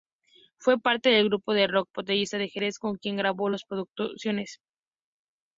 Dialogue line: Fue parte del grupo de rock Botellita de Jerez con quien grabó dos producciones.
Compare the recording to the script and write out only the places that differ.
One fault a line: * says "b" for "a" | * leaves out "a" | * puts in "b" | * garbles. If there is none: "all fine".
all fine